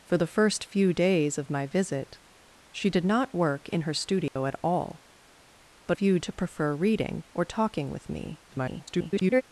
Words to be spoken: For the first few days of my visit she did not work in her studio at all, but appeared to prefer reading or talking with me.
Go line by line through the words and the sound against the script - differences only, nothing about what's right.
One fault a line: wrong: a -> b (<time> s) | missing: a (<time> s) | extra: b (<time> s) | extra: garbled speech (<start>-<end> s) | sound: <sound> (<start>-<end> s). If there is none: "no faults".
sound: dropout (4.3-4.4 s)
wrong: appeared -> few (5.9 s)
extra: garbled speech (8.5-9.4 s)